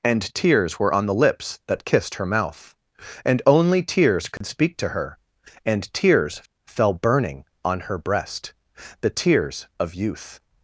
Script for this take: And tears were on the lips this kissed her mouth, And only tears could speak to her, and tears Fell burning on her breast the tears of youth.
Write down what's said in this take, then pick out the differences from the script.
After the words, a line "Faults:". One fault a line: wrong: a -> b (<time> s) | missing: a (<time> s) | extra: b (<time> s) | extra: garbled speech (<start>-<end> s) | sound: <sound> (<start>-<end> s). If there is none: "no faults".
And tears were on the lips that kissed her mouth, And only tears could speak to her, and tears Fell burning on her breast the tears of youth.
Faults:
wrong: this -> that (1.7 s)
sound: dropout (4.4-4.4 s)